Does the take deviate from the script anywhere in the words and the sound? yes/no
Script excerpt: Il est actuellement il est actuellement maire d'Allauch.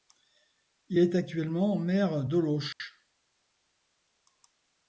yes